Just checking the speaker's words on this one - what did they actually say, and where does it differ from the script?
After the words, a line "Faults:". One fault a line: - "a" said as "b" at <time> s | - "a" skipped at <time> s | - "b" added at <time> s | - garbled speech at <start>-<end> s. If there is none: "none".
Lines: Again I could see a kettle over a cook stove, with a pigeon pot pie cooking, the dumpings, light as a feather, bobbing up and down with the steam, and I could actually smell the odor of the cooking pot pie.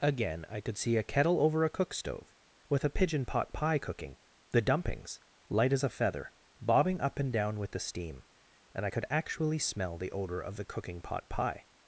Again I could see a kettle over a cook stove, with a pigeon pot pie cooking, the dumpings, light as a feather, bobbing up and down with the steam, and I could actually smell the odor of the cooking pot pie.
Faults:
none